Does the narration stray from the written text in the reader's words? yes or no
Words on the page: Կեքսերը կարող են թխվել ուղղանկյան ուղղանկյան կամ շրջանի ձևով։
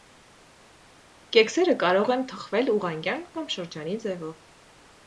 yes